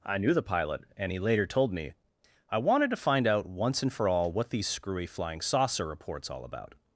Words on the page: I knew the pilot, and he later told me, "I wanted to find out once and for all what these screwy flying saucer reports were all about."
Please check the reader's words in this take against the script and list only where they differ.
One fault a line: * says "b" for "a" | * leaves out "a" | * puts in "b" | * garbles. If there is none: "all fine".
* leaves out "were"